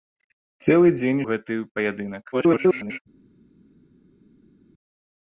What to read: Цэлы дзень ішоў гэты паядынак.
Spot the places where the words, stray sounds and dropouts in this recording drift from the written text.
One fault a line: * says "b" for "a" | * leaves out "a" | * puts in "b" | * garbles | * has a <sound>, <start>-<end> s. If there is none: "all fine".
* leaves out "ішоў"
* garbles